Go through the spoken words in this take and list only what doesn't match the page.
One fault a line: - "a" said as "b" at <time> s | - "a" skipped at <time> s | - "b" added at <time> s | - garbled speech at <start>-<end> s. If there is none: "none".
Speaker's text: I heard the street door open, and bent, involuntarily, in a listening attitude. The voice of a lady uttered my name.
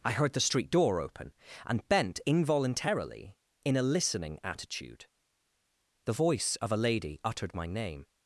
none